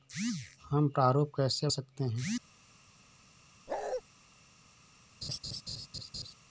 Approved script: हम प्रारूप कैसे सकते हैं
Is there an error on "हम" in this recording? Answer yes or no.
no